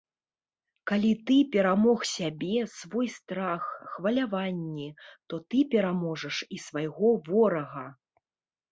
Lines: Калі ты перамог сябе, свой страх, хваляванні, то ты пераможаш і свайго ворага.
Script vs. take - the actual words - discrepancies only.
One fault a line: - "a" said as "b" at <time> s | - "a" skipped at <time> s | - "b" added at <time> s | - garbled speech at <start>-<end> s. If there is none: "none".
none